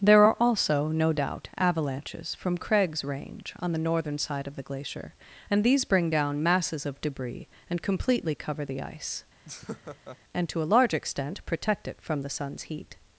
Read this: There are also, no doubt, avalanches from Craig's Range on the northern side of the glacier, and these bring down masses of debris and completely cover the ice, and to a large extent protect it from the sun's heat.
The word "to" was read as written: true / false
true